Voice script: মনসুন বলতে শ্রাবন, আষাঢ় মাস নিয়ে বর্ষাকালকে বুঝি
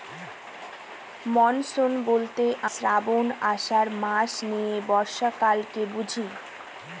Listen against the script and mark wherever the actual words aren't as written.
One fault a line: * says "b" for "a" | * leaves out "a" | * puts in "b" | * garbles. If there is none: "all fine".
all fine